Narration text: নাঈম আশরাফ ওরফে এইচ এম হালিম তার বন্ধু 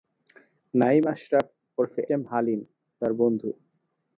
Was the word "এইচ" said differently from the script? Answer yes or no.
yes